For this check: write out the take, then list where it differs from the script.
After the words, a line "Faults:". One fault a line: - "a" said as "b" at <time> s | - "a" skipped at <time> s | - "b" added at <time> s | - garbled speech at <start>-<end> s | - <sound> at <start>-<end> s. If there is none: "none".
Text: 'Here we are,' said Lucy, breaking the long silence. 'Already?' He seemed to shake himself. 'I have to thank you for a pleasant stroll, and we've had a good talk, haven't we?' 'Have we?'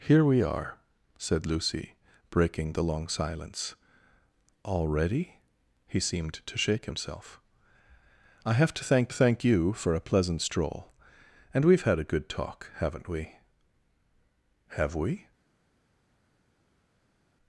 'Here we are,' said Lucy, breaking the long silence. 'Already?' He seemed to shake himself. 'I have to thank thank you for a pleasant stroll, and we've had a good talk, haven't we?' 'Have we?'
Faults:
- "thank" added at 9.1 s